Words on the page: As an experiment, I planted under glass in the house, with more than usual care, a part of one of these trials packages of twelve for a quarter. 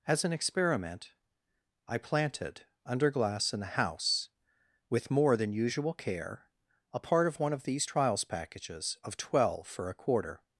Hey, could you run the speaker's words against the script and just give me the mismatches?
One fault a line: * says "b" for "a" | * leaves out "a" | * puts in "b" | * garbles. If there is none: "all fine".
all fine